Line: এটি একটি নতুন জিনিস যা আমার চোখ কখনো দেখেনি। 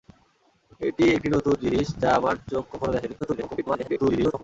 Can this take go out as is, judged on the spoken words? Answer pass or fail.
fail